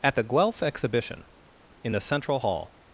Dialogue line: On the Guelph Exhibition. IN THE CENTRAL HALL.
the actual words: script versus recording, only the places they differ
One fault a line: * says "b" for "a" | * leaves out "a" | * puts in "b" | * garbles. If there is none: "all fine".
* says "At" for "On"